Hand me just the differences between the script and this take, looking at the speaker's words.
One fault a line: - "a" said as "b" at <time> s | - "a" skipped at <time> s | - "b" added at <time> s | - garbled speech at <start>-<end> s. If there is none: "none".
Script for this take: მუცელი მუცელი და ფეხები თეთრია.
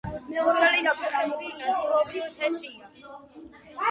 - "მუცელი" skipped at 0.8 s
- "ნაწილობრივ" added at 1.6 s